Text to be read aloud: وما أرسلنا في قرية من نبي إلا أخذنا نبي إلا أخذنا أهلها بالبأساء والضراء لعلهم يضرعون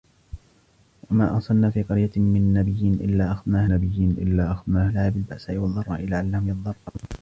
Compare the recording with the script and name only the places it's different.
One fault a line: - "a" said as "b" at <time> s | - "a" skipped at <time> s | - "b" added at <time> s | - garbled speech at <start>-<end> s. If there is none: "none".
none